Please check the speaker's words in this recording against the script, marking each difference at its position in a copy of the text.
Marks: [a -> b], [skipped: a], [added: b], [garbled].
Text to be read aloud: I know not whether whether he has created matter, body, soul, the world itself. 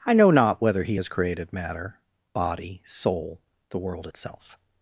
I know not whether [skipped: whether] he has created matter, body, soul, the world itself.